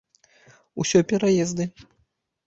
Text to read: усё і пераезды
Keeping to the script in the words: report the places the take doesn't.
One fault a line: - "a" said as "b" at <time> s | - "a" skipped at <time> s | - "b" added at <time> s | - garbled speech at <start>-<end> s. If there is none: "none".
none